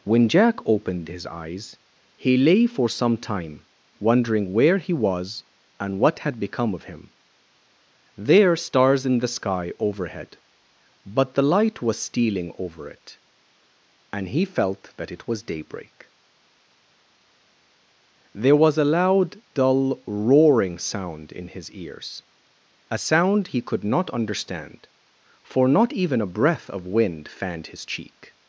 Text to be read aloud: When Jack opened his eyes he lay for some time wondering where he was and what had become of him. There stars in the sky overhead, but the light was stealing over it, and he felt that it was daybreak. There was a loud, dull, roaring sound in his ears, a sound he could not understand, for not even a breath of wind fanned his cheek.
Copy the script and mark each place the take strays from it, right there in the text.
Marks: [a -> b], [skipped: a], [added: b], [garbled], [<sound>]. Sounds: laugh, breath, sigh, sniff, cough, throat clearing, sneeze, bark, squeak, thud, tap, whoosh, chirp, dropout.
When Jack opened his eyes he lay for some time wondering where he was and what had become of him. There stars in the sky overhead, but the light was stealing over it, and he felt that it was daybreak. There was a loud, dull, roaring sound in his ears, a sound he could not understand, for not even a breath of wind fanned his cheek.